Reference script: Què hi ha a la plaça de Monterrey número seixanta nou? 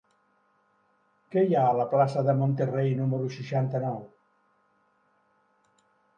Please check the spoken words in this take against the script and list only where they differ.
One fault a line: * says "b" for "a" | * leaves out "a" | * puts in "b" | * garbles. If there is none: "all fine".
all fine